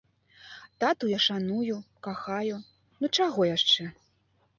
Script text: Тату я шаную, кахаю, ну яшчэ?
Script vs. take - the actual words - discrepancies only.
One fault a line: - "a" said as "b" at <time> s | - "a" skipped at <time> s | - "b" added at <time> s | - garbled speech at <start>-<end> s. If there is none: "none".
- "чаго" added at 3.2 s